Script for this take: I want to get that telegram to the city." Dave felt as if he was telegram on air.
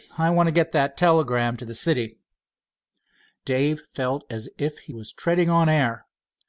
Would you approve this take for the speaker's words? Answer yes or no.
no